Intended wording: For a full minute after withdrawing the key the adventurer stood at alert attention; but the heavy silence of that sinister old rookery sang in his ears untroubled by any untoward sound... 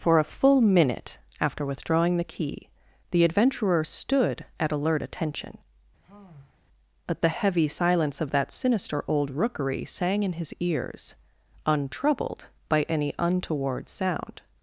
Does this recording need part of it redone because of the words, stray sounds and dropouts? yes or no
yes